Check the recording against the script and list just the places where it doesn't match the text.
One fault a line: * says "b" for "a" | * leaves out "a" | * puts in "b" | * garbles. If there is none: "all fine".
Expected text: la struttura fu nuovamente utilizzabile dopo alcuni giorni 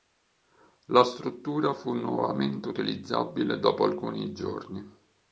all fine